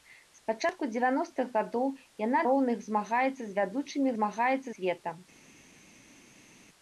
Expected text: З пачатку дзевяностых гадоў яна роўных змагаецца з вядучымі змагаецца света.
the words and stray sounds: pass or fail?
pass